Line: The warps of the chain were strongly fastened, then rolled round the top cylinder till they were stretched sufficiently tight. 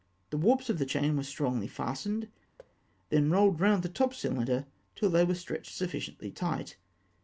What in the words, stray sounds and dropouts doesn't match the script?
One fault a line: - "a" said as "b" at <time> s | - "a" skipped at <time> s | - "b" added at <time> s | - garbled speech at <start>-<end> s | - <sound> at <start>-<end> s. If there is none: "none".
- thud at 2.6-2.8 s